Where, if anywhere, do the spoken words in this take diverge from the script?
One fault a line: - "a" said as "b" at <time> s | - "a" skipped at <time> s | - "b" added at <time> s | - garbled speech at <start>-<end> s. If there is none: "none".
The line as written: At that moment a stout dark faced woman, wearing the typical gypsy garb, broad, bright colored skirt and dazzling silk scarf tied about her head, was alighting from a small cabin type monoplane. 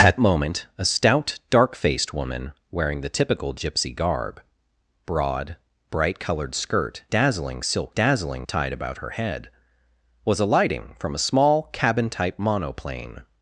- "that" skipped at 0.2 s
- "and" skipped at 7.0 s
- "scarf" said as "dazzling" at 7.9 s